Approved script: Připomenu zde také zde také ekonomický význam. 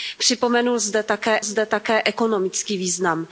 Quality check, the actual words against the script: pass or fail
pass